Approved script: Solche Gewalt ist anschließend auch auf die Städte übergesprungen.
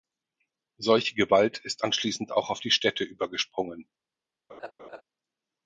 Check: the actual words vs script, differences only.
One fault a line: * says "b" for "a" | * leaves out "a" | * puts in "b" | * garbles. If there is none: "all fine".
all fine